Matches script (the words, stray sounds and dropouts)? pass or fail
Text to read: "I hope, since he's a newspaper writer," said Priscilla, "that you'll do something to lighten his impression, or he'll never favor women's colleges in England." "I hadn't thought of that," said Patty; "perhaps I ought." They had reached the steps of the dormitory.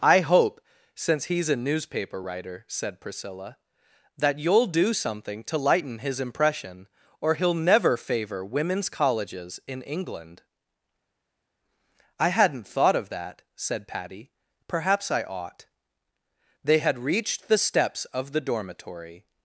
pass